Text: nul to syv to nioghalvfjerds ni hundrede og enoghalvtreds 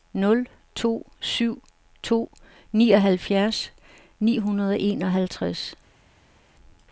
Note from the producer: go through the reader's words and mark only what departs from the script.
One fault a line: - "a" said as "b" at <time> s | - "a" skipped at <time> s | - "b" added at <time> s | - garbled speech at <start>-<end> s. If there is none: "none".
none